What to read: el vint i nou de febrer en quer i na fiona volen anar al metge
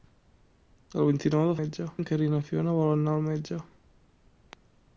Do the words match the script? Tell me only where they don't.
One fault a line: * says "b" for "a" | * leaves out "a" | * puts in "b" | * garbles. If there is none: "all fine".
* says "metge" for "febrer"